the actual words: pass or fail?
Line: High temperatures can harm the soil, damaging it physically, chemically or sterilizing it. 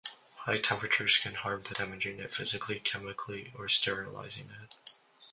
fail